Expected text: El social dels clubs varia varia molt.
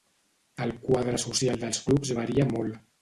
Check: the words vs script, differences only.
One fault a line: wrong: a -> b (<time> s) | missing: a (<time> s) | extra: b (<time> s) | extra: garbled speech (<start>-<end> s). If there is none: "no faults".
extra: quadre (0.9 s)
missing: varia (2.5 s)